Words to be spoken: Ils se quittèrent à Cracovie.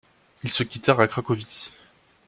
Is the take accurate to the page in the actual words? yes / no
yes